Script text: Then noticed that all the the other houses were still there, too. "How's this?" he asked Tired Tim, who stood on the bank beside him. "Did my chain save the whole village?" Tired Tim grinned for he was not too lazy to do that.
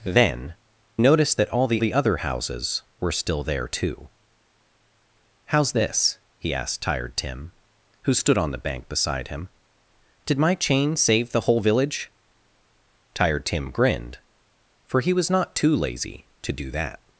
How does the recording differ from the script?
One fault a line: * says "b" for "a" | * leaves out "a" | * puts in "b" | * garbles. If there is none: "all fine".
all fine